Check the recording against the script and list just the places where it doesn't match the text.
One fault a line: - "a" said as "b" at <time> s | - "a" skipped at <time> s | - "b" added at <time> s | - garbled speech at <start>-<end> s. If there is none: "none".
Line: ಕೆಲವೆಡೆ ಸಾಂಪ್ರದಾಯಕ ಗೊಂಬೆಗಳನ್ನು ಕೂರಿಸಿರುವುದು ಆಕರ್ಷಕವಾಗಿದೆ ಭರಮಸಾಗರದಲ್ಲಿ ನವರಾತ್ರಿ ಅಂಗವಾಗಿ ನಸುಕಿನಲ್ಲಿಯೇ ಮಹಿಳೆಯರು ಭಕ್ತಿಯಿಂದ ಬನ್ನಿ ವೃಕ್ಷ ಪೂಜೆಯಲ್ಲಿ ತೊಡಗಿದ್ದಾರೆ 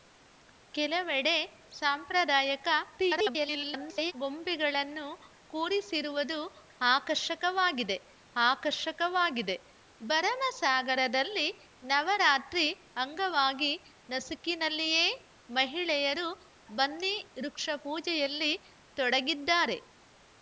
- garbled speech at 3.0-4.1 s
- "ಆಕರ್ಷಕವಾಗಿದೆ" added at 8.4 s
- "ಭಕ್ತಿಯಿಂದ" skipped at 16.3 s